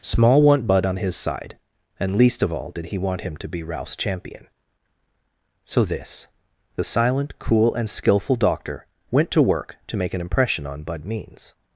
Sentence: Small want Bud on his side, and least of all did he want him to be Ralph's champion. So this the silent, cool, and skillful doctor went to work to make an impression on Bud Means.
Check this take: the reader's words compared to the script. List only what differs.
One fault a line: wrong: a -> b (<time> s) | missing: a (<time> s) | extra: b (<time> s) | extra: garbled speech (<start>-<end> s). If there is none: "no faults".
no faults